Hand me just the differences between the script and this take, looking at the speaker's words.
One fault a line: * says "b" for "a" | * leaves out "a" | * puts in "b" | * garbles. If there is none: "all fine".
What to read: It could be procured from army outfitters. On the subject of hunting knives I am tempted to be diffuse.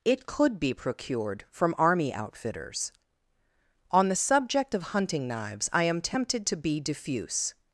all fine